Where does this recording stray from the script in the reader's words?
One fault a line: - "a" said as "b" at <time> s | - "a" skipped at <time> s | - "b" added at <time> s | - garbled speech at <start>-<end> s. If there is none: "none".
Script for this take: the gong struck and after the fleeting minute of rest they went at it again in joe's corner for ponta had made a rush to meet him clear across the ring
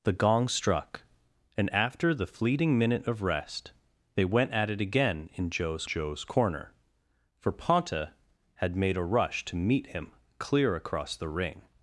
- "joe's" added at 5.8 s